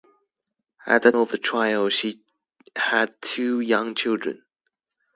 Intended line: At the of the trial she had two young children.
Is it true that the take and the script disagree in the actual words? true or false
false